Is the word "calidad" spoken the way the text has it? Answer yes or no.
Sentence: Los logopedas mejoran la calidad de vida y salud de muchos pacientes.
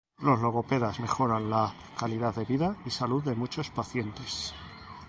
yes